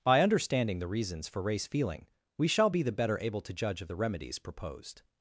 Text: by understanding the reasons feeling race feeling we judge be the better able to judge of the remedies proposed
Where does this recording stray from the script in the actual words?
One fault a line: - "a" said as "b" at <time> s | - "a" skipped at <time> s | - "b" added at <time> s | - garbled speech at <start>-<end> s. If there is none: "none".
- "feeling" said as "for" at 1.3 s
- "judge" said as "shall" at 2.5 s